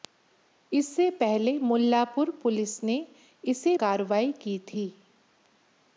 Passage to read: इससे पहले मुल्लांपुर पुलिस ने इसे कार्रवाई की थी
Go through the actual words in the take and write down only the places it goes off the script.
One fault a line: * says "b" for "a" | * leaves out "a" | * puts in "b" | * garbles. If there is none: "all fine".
all fine